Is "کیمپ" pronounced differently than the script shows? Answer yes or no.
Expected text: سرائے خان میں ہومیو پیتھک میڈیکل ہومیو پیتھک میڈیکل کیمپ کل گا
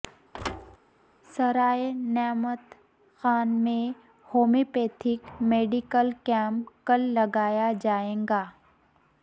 yes